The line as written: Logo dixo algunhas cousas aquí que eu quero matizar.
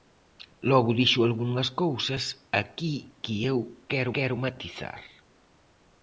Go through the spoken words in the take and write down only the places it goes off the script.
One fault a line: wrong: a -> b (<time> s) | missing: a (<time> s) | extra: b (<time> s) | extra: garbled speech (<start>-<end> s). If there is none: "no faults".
extra: quero (4.2 s)